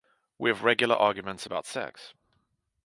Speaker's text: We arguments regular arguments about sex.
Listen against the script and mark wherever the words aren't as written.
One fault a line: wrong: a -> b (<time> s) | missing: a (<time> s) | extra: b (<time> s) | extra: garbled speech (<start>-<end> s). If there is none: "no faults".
wrong: arguments -> have (0.5 s)